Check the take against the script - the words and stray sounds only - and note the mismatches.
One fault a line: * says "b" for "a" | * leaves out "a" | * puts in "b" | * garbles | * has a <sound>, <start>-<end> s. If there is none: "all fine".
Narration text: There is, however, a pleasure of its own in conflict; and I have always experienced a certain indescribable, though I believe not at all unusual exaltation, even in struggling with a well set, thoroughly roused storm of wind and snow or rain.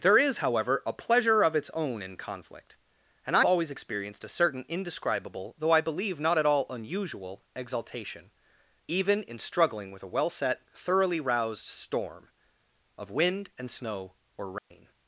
* leaves out "have"
* has a dropout, 14.6-14.7 s